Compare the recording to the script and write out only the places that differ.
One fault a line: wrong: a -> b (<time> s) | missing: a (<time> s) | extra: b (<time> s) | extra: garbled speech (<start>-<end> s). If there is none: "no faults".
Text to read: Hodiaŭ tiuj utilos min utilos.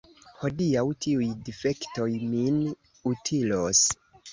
wrong: utilos -> difektoj (1.5 s)